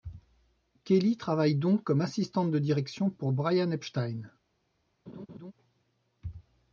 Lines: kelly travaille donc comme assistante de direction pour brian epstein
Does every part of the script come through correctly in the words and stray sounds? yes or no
no